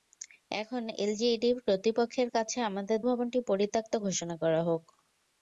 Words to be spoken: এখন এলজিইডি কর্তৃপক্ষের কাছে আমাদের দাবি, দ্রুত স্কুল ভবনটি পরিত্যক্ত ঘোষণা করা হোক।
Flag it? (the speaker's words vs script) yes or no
yes